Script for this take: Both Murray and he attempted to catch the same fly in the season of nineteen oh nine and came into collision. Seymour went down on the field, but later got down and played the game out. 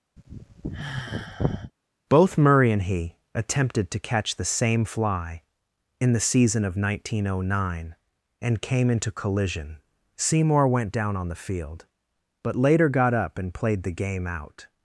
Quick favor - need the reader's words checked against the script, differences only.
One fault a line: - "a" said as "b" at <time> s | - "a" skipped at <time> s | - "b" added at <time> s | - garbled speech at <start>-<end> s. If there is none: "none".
- "down" said as "up" at 13.2 s